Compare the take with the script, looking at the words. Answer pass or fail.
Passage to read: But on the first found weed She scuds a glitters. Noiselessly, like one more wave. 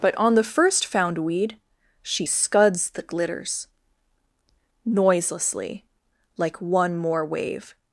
fail